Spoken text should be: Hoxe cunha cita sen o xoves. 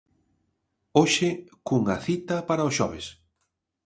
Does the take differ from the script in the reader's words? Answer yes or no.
yes